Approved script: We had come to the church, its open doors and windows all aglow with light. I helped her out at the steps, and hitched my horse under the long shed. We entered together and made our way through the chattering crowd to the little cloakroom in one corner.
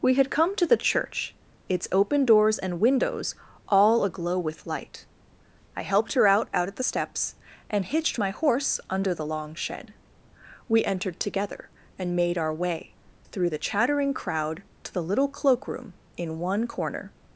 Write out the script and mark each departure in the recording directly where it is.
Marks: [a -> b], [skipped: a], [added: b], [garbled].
We had come to the church, its open doors and windows all aglow with light. I helped her out [added: out] at the steps, and hitched my horse under the long shed. We entered together and made our way through the chattering crowd to the little cloakroom in one corner.